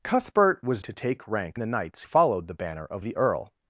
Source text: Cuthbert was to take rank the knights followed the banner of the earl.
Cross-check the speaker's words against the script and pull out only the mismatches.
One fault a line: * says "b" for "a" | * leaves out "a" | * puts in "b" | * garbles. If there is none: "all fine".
all fine